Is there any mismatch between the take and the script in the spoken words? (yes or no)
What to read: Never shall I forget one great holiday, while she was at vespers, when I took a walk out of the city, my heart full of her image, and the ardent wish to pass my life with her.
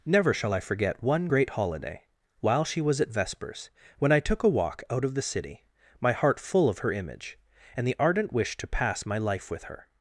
no